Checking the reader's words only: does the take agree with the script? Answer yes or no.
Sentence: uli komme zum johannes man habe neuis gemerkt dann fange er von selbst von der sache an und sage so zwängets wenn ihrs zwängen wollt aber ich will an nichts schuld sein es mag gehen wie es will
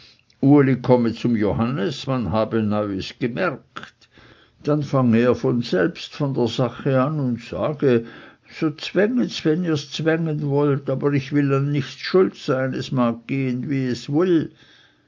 yes